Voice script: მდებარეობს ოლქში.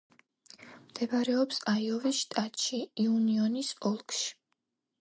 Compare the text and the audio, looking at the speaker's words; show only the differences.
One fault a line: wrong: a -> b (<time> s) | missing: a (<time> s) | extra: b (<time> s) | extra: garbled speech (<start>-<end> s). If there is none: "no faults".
extra: აიოვის შტატში იუნიონის (1.7 s)